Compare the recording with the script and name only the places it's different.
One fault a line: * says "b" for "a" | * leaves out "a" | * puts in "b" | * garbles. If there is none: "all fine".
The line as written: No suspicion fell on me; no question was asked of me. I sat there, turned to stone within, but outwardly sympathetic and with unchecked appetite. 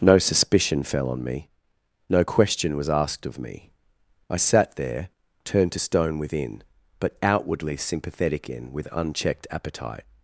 * says "in" for "and"